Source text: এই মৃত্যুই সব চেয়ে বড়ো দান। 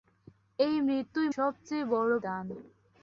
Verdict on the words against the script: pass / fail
pass